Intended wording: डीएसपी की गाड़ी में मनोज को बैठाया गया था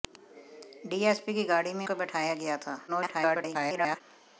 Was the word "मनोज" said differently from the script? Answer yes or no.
yes